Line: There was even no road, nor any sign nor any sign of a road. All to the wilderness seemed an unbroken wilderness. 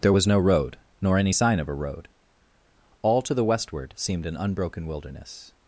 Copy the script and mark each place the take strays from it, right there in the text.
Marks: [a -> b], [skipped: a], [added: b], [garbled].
There was [skipped: even] no road, nor any sign [skipped: nor any sign] of a road. All to the [wilderness -> westward] seemed an unbroken wilderness.